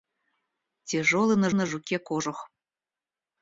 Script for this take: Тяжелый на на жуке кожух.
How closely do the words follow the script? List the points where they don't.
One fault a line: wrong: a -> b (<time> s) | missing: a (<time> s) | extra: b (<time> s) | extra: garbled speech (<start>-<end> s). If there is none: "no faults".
no faults